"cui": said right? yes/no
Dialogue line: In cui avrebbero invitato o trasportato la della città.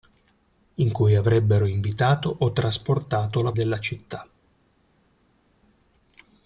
yes